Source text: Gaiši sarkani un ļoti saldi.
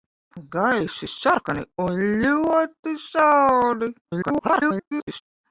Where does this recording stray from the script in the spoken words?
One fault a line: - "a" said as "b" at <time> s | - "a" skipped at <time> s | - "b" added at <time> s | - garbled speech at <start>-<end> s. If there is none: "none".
- garbled speech at 4.0-5.2 s